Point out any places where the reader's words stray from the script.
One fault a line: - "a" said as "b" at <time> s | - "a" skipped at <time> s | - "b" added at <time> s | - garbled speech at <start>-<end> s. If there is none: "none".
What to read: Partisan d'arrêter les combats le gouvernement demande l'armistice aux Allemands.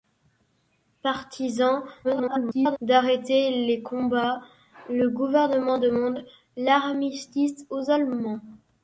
- garbled speech at 2.0-2.8 s